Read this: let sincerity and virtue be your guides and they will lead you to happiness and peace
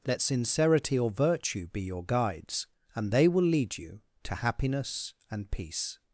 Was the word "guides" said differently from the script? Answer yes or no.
no